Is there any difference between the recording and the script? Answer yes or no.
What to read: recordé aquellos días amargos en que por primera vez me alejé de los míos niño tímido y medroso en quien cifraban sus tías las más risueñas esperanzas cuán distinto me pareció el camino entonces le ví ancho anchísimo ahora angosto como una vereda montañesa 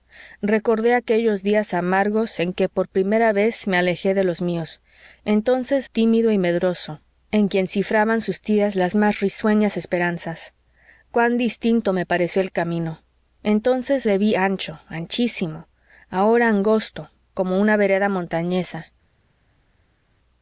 yes